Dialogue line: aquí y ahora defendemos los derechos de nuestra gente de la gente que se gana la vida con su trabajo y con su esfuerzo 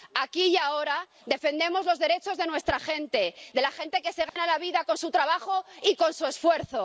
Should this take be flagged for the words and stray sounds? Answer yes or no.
yes